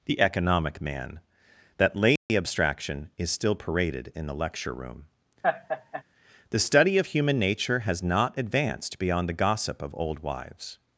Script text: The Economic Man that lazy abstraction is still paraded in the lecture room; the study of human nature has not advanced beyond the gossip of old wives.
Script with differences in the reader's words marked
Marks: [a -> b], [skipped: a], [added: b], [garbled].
The Economic Man that lazy abstraction is still paraded in the lecture room; the study of human nature has not advanced beyond the gossip of old wives.